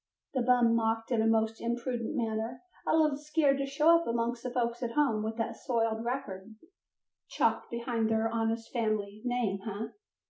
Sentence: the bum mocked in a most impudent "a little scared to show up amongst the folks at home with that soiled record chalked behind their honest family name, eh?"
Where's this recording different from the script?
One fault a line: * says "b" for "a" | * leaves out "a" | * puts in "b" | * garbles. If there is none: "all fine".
* puts in "manner"